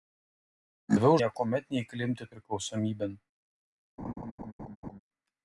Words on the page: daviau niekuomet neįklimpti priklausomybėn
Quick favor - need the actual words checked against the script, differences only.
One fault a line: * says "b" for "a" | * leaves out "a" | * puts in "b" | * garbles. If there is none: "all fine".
all fine